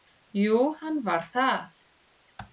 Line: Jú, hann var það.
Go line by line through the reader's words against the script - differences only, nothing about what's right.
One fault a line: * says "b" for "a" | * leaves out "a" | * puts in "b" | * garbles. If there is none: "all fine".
all fine